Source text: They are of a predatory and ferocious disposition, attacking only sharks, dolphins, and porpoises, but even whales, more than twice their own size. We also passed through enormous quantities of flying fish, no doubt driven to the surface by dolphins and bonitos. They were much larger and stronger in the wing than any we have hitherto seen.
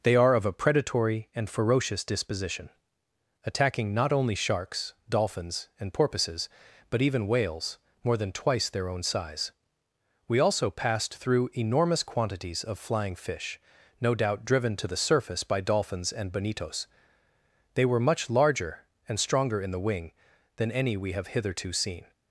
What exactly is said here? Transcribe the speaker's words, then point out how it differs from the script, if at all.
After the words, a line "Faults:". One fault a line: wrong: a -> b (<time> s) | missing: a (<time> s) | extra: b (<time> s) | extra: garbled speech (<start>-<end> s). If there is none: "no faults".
They are of a predatory and ferocious disposition, attacking not only sharks, dolphins, and porpoises, but even whales, more than twice their own size. We also passed through enormous quantities of flying fish, no doubt driven to the surface by dolphins and bonitos. They were much larger and stronger in the wing than any we have hitherto seen.
Faults:
extra: not (3.9 s)